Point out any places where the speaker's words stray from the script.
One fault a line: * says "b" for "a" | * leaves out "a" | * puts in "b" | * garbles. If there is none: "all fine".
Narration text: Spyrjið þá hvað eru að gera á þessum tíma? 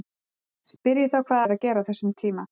all fine